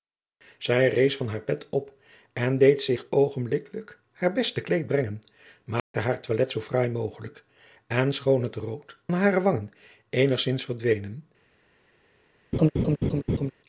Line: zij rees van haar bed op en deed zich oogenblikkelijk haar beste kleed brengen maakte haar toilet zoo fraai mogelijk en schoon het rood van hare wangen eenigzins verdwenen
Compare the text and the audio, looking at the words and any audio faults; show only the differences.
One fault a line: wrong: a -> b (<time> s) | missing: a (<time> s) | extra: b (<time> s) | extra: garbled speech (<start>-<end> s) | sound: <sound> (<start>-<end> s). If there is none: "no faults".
sound: dropout (5.8-5.9 s)
missing: van (9.0 s)
sound: laugh (12.5-13.5 s)